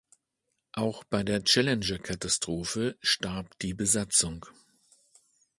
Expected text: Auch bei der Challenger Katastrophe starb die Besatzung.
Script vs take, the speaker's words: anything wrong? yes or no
no